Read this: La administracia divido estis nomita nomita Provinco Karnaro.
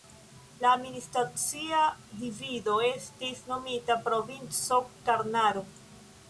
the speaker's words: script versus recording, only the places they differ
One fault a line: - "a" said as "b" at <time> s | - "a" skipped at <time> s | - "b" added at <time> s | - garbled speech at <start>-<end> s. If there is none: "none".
- "nomita" skipped at 4.0 s